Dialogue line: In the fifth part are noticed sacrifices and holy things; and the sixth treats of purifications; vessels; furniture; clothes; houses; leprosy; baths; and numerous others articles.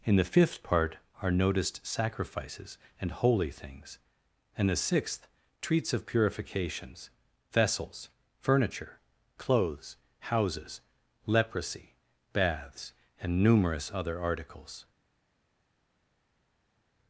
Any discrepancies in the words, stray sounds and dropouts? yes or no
yes